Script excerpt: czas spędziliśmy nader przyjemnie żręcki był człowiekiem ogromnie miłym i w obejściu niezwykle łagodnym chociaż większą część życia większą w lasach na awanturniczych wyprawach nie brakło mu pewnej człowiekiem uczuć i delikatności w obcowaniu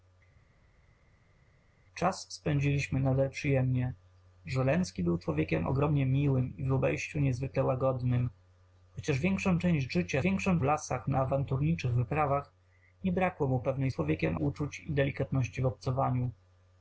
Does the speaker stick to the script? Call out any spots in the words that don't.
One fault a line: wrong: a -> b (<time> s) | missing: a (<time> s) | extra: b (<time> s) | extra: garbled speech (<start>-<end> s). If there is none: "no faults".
no faults